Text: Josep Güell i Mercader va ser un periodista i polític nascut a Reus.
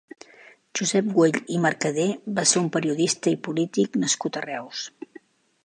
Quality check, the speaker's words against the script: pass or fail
pass